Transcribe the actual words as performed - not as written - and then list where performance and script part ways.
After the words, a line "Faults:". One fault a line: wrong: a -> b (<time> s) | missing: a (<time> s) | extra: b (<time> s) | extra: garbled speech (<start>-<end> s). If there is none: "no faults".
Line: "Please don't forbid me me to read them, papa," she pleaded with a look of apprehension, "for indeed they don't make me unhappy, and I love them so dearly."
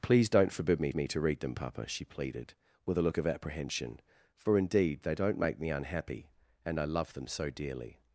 "Please don't forbid me me to read them, papa," she pleaded with a look of apprehension, "for indeed they don't make me unhappy, and I love them so dearly."
Faults:
no faults